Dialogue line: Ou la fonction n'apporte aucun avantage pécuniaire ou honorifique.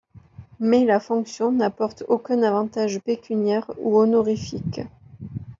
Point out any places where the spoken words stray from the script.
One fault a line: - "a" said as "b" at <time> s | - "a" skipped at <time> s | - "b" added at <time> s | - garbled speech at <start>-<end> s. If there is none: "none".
- "Ou" said as "Mais" at 0.6 s